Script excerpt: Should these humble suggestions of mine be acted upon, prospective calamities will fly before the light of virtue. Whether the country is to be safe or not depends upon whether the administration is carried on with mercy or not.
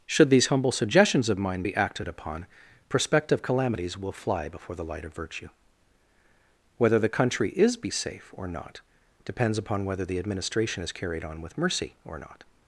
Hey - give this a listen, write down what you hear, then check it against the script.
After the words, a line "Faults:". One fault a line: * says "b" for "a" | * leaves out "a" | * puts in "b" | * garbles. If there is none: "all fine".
Should these humble suggestions of mine be acted upon, prospective calamities will fly before the light of virtue. Whether the country is be safe or not depends upon whether the administration is carried on with mercy or not.
Faults:
* leaves out "to"